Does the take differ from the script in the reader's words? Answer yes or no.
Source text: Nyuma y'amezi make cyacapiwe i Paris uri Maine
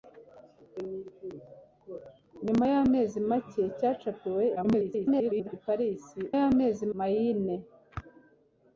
yes